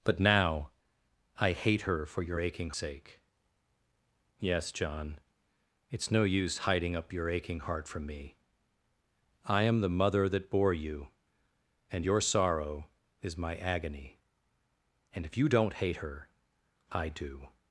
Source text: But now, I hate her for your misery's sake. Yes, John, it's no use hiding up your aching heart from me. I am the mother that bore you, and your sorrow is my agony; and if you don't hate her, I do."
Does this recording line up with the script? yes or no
no